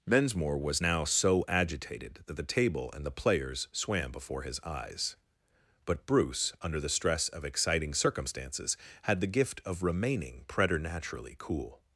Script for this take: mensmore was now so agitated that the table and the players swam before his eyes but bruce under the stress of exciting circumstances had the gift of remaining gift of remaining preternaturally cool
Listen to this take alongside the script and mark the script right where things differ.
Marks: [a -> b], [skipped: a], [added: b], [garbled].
mensmore was now so agitated that the table and the players swam before his eyes but bruce under the stress of exciting circumstances had the gift of remaining [skipped: gift of remaining] preternaturally cool